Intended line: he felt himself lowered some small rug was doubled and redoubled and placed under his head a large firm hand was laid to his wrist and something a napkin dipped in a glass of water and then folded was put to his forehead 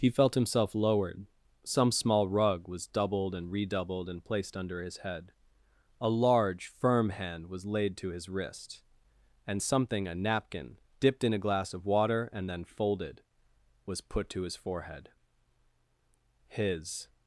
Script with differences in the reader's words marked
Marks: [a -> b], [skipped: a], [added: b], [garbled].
he felt himself lowered some small rug was doubled and redoubled and placed under his head a large firm hand was laid to his wrist and something a napkin dipped in a glass of water and then folded was put to his forehead [added: his]